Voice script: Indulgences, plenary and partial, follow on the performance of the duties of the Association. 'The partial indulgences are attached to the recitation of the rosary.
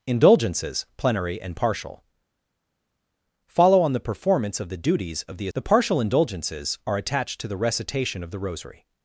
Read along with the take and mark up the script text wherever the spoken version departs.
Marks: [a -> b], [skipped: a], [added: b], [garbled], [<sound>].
Indulgences, plenary and partial, follow on the performance of the duties of the [skipped: Association.] 'The partial indulgences are attached to the recitation of the rosary.